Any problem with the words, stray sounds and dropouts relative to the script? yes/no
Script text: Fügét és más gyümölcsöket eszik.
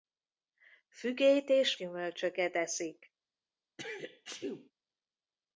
yes